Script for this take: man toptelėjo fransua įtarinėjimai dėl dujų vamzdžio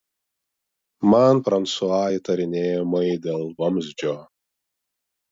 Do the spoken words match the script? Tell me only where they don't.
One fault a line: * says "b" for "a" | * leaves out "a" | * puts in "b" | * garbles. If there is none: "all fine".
* leaves out "toptelėjo"
* leaves out "dujų"